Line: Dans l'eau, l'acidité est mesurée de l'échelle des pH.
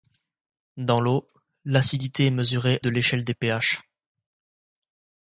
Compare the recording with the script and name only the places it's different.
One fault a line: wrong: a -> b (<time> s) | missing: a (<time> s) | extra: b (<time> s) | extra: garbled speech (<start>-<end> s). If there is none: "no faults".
no faults